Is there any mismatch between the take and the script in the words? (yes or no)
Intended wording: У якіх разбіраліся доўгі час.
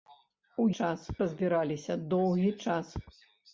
yes